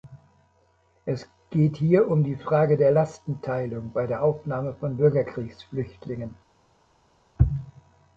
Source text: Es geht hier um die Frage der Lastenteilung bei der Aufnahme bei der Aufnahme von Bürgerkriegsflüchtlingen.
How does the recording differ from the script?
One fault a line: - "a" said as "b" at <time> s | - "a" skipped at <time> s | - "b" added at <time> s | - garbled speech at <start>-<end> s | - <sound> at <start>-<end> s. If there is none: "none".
- "bei der Aufnahme" skipped at 4.7 s